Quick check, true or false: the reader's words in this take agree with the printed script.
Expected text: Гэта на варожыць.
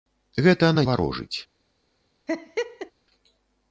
true